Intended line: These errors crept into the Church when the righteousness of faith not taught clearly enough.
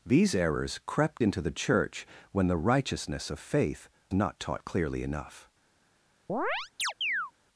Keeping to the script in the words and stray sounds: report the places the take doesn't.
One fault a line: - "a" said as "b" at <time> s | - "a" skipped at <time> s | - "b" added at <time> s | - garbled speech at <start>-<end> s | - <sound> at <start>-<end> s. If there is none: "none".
- chirp at 6.3-7.3 s